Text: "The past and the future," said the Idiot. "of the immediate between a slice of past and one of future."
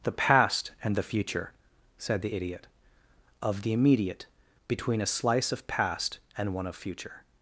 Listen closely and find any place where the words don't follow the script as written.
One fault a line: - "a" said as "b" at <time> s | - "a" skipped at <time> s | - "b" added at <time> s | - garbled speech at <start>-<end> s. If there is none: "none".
none